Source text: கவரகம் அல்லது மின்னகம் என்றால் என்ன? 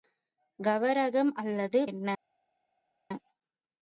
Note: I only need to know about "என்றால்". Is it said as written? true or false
false